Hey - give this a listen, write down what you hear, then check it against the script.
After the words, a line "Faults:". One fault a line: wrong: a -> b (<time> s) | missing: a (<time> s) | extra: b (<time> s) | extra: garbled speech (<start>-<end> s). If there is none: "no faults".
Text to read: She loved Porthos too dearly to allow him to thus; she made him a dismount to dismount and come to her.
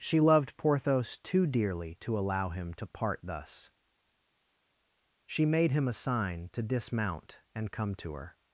She loved Porthos too dearly to allow him to part thus; she made him a sign to dismount and come to her.
Faults:
extra: part (2.9 s)
wrong: dismount -> sign (5.9 s)